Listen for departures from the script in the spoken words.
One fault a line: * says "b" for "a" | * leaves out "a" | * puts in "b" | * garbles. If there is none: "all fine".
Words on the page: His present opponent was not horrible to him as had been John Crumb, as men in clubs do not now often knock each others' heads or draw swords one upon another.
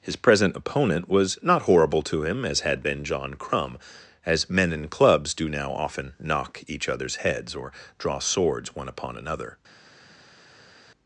* leaves out "not"